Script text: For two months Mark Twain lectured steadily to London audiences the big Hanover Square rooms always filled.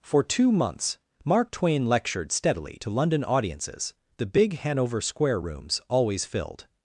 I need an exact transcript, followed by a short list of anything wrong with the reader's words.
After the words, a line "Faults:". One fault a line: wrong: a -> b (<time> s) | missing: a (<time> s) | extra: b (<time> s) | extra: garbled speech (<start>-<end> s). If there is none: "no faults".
For two months Mark Twain lectured steadily to London audiences the big Hanover Square rooms always filled.
Faults:
no faults